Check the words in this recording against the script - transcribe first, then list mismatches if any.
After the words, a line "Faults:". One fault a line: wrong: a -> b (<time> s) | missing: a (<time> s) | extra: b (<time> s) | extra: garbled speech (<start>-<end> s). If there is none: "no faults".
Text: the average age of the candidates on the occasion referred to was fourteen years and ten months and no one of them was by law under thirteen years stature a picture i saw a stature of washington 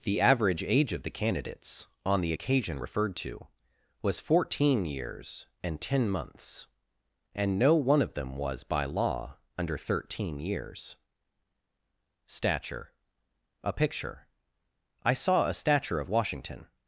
the average age of the candidates on the occasion referred to was fourteen years and ten months and no one of them was by law under thirteen years stature a picture i saw a stature of washington
Faults:
no faults